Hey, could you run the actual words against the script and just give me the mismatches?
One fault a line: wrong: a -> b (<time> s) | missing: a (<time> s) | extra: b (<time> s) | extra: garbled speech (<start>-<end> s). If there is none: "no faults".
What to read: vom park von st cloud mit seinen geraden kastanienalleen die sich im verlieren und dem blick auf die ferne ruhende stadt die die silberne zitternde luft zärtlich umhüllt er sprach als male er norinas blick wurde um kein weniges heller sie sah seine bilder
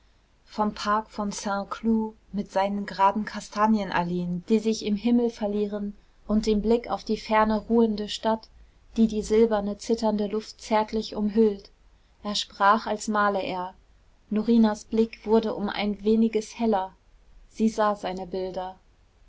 extra: himmel (5.0 s)
wrong: kein -> ein (15.7 s)